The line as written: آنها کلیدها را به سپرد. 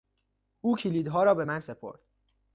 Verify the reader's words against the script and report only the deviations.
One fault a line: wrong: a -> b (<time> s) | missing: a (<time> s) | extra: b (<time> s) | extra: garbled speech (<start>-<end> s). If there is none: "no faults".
wrong: آنها -> او (0.6 s)
extra: من (1.4 s)